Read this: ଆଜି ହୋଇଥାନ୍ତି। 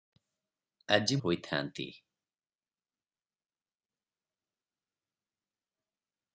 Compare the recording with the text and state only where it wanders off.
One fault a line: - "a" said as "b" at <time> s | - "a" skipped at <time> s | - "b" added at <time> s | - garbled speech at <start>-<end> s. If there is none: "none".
none